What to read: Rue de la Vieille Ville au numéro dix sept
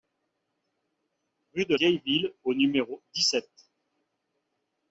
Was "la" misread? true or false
true